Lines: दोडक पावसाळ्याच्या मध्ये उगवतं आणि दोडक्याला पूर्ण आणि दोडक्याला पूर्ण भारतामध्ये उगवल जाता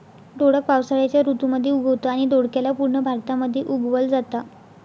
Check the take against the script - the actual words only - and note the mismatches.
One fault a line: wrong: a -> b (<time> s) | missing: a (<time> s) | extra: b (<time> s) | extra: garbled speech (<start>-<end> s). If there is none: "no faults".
extra: ऋतू (1.2 s)
missing: आणि दोडक्याला पूर्ण (3.0 s)